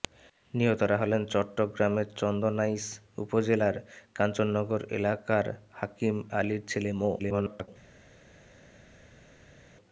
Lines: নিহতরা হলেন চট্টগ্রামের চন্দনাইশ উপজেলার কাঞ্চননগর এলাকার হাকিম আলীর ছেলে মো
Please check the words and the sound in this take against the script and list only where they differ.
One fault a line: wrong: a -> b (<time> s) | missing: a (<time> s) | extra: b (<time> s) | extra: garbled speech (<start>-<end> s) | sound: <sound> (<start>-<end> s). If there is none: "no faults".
extra: garbled speech (7.2-7.7 s)